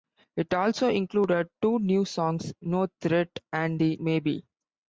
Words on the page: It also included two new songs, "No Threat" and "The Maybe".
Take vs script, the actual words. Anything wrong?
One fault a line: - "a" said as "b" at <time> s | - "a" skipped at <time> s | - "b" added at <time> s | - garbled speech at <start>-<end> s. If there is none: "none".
none